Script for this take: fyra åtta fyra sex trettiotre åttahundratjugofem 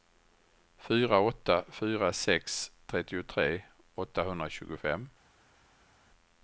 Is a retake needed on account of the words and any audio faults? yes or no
no